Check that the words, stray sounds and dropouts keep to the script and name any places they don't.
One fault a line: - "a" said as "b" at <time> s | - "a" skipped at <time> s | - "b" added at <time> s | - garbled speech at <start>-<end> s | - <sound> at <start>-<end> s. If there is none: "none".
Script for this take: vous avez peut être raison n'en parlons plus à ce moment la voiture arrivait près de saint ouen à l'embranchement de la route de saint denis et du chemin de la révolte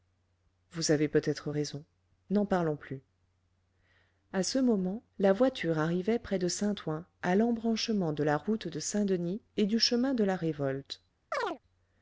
- chirp at 11.3-11.6 s